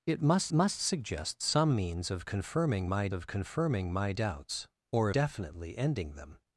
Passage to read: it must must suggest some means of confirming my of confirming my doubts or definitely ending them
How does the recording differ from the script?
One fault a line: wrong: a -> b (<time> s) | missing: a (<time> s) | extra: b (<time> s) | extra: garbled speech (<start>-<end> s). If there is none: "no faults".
no faults